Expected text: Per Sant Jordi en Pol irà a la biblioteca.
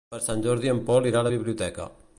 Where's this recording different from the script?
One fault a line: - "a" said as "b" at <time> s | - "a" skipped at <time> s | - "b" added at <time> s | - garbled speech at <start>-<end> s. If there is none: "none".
none